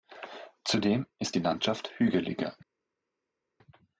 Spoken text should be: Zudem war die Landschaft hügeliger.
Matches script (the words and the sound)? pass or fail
fail